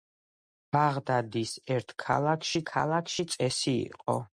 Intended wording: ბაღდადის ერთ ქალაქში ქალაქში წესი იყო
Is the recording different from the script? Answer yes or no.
no